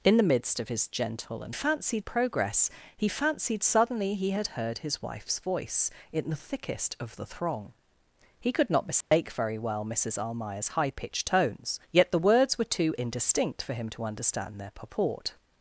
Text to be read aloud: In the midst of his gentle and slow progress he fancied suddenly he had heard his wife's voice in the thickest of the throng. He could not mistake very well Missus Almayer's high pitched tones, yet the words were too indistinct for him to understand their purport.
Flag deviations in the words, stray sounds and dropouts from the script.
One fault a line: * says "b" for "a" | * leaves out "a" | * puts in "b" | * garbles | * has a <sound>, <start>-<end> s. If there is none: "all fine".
* says "fancied" for "slow"
* has a dropout, 9.0-9.1 s